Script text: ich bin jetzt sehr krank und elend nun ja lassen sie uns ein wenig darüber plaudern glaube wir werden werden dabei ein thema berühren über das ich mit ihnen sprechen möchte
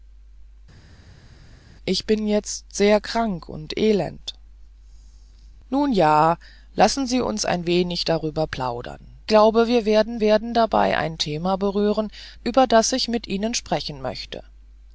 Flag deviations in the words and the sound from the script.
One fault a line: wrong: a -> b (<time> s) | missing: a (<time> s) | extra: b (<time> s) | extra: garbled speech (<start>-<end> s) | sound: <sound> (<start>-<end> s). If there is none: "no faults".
no faults